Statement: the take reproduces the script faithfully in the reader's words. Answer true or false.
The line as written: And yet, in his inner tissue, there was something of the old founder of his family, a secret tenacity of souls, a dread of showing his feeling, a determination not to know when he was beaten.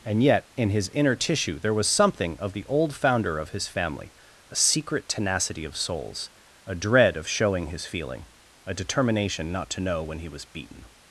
true